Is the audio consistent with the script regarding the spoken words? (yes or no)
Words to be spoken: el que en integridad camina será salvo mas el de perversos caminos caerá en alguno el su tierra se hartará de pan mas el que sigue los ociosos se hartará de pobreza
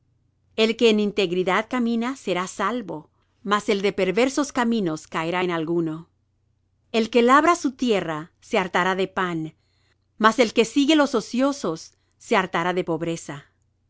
no